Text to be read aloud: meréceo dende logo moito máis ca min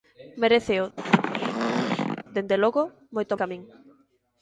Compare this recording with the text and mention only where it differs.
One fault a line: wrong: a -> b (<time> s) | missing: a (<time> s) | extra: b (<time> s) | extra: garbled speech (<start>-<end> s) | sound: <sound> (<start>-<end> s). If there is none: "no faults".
sound: throat clearing (1.0-2.2 s)
missing: máis (3.4 s)